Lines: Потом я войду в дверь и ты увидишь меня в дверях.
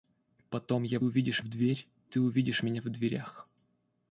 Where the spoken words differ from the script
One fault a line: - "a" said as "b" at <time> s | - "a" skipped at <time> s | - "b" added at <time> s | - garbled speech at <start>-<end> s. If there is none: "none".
- "войду" said as "увидишь" at 1.0 s
- "и" skipped at 1.9 s